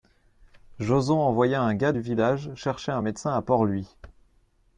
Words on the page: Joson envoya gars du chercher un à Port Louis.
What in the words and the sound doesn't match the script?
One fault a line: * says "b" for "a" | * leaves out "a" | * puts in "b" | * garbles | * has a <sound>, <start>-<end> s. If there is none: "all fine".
* puts in "un"
* puts in "village"
* puts in "médecin"